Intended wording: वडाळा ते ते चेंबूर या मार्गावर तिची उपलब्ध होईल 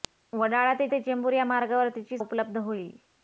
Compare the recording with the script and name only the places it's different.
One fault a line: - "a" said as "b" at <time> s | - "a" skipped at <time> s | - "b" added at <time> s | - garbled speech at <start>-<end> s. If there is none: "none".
none